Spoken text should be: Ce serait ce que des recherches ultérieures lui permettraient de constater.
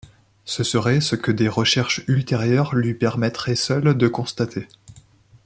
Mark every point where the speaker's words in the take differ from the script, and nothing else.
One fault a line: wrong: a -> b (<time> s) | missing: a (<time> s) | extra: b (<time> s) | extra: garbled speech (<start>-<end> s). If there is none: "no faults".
extra: seules (3.5 s)